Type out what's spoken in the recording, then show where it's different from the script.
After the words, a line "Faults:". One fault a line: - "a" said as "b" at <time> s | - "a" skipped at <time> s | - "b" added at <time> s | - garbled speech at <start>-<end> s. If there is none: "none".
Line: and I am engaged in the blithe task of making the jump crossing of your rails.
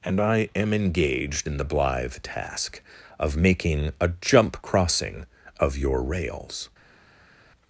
and I am engaged in the blithe task of making a jump crossing of your rails.
Faults:
- "the" said as "a" at 4.0 s